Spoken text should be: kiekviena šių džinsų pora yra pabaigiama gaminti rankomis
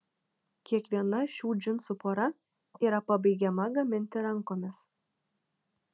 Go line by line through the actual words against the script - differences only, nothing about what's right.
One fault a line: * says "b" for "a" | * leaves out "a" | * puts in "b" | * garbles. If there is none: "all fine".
all fine